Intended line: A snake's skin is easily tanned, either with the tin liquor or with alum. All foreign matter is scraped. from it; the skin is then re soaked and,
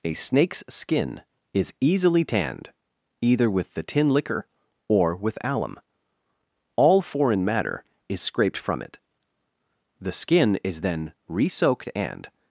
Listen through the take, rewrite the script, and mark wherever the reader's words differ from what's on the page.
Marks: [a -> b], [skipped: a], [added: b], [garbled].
A snake's skin is easily tanned, either with the tin liquor or with alum. All foreign matter is scraped. from it; the skin is then re soaked and,